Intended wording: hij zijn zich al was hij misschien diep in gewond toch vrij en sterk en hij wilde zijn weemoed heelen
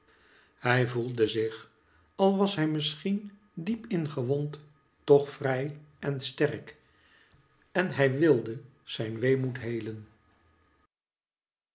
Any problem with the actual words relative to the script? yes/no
yes